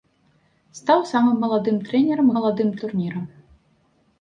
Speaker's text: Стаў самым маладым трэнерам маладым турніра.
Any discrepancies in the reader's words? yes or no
no